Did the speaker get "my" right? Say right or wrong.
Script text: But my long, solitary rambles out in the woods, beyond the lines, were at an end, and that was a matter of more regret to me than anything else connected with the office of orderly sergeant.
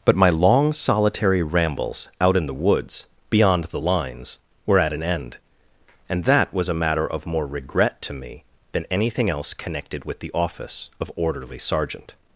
right